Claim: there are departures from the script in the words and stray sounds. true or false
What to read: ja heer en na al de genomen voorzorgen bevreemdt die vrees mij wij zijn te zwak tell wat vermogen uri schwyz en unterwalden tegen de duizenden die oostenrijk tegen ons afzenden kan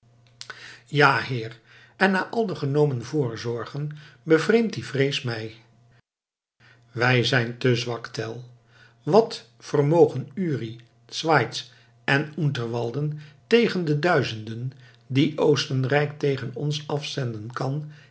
false